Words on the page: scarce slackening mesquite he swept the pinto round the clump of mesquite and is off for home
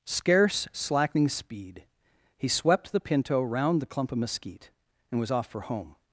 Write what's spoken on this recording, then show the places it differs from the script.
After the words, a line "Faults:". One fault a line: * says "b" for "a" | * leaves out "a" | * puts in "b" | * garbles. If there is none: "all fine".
scarce slackening speed he swept the pinto round the clump of mesquite and was off for home
Faults:
* says "speed" for "mesquite"
* says "was" for "is"